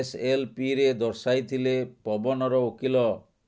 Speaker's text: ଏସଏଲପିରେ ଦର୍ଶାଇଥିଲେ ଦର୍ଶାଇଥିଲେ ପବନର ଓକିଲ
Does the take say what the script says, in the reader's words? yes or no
no